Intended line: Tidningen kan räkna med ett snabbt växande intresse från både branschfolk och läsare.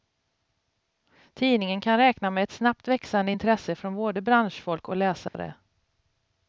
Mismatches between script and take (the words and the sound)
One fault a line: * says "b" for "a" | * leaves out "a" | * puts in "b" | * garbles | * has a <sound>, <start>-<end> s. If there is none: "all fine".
* has a dropout, 5.3-5.3 s